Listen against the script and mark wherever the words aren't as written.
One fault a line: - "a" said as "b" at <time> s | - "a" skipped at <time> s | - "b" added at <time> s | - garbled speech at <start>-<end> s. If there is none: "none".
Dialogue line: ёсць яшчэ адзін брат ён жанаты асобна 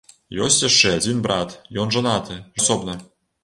none